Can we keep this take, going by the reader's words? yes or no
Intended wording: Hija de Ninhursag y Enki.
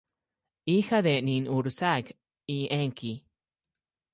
yes